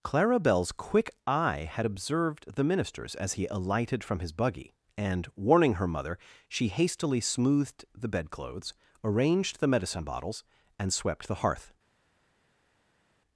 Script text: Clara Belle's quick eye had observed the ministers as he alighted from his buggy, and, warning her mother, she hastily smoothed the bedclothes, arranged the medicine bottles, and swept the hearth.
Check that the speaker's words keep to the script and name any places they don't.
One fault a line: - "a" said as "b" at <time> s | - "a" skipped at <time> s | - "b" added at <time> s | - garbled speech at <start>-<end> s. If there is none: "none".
none